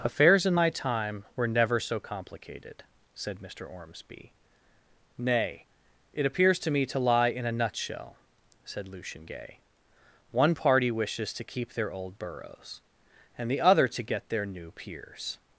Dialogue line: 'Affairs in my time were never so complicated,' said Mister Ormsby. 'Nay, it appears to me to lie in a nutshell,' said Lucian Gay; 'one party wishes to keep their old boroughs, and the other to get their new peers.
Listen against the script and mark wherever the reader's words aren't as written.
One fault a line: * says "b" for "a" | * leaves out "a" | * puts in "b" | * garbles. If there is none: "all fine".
all fine